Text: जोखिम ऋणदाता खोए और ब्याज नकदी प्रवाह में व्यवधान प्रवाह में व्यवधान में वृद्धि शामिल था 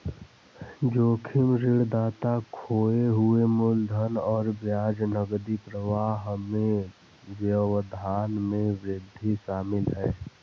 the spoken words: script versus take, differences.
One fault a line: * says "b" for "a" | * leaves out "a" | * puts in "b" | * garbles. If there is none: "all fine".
* puts in "हुए मूलधन"
* leaves out "प्रवाह"
* leaves out "व्यवधान में"
* says "है" for "था"